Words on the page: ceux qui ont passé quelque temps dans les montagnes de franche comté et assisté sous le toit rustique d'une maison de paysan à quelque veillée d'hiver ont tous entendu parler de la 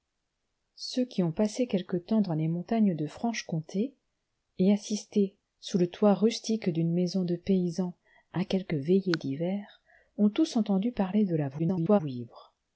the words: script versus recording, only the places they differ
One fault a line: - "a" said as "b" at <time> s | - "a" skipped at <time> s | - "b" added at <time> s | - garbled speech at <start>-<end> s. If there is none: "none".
- garbled speech at 11.6-12.0 s